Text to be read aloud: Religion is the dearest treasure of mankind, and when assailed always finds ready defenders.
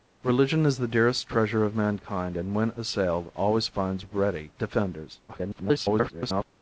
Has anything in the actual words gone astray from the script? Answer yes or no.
yes